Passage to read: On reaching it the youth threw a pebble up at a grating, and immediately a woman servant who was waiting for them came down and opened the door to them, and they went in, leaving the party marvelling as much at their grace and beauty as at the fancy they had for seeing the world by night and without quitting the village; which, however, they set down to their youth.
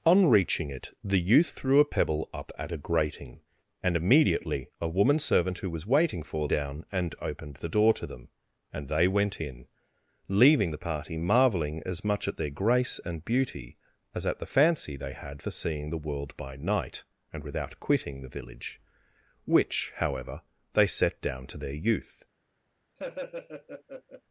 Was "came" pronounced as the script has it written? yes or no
no